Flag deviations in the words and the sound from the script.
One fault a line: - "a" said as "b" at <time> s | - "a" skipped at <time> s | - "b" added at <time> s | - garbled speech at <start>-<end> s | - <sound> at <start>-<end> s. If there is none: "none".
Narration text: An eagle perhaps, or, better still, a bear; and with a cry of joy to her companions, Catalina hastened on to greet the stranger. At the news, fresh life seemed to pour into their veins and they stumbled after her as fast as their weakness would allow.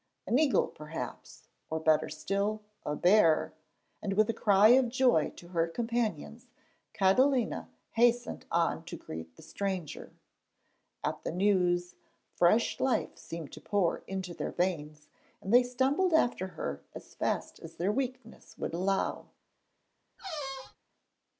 - squeak at 20.2-20.8 s